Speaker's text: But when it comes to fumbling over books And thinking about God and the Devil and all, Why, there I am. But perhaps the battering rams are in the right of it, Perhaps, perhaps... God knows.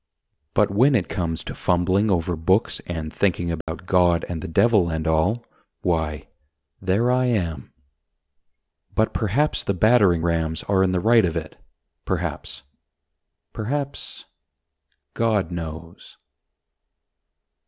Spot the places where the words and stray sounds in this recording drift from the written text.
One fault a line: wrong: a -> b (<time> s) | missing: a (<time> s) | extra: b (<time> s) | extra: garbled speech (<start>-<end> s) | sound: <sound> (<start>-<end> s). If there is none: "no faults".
sound: dropout (3.6-3.7 s)